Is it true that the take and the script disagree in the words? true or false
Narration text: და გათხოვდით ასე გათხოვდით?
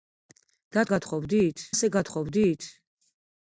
false